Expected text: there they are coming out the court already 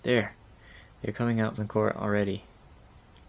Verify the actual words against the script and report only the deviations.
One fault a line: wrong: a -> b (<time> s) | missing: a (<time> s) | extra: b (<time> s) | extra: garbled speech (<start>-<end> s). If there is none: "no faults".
no faults